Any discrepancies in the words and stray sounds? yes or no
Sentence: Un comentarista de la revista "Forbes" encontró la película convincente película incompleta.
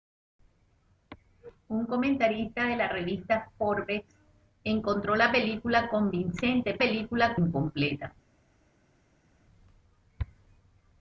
no